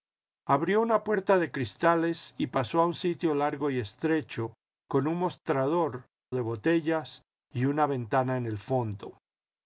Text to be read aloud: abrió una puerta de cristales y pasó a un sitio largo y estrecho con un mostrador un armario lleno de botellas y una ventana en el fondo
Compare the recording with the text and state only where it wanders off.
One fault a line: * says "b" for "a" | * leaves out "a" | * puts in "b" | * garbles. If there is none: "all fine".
* leaves out "un armario lleno"